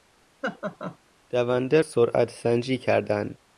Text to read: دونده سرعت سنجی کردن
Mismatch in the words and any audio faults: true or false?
true